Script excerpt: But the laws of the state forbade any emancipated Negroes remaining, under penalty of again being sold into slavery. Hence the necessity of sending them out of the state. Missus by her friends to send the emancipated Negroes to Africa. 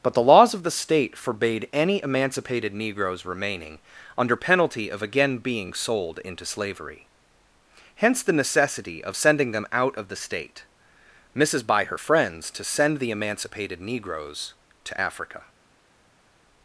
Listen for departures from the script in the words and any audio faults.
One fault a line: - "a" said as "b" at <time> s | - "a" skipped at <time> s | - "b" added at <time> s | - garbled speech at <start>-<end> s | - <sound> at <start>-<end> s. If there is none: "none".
none